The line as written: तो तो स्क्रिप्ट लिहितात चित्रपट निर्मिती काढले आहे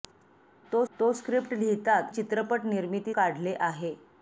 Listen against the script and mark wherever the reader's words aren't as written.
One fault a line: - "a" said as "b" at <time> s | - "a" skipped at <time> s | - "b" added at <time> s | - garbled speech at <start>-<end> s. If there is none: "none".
none